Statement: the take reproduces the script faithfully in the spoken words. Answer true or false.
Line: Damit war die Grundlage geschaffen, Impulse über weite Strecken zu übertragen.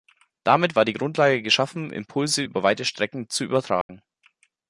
true